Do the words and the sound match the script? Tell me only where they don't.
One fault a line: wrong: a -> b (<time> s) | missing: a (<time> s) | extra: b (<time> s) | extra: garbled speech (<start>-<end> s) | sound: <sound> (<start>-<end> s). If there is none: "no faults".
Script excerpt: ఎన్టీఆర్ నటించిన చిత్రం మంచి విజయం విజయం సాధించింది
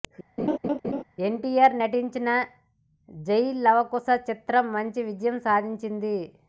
sound: laugh (0.4-1.0 s)
extra: జై లవకుశ (3.1 s)
missing: విజయం (5.4 s)